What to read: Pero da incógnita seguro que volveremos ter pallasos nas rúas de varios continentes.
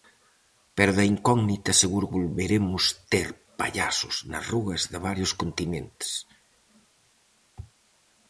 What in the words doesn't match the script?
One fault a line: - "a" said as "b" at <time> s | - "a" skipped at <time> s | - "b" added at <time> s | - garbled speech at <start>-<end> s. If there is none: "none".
- "que" skipped at 2.1 s